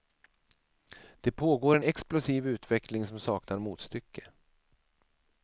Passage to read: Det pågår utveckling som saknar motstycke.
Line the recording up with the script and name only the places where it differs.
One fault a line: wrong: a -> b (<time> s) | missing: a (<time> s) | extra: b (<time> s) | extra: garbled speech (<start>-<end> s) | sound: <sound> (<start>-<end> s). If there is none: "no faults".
extra: en explosiv (1.7 s)